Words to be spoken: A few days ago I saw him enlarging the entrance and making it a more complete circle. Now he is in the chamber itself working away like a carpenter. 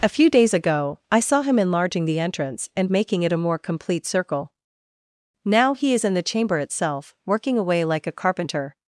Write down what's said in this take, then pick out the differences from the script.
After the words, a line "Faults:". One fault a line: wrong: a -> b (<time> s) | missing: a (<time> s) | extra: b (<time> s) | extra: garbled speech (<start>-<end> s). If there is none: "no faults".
A few days ago I saw him enlarging the entrance and making it a more complete circle. Now he is in the chamber itself working away like a carpenter.
Faults:
no faults